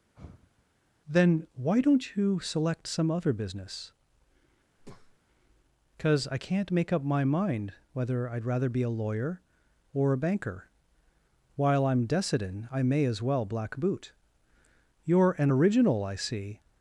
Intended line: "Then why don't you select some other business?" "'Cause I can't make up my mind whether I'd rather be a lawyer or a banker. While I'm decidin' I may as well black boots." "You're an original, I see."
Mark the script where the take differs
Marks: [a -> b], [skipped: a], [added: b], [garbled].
"Then why don't you select some other business?" "'Cause I can't make up my mind whether I'd rather be a lawyer or a banker. While I'm decidin' I may as well black [boots." -> boot] "You're an original, I see."